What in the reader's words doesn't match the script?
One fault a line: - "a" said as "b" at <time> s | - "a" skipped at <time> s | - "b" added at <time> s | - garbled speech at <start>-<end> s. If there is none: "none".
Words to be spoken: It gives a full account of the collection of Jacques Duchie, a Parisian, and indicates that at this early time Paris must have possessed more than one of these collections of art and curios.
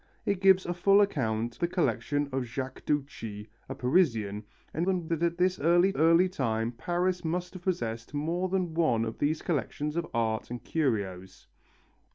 - "of" skipped at 1.6 s
- "indicates" said as "than" at 4.8 s
- "early" added at 6.0 s